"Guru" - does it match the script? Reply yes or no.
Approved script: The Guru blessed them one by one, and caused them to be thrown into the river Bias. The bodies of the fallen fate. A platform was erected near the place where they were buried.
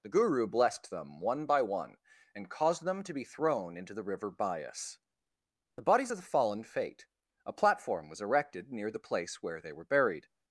yes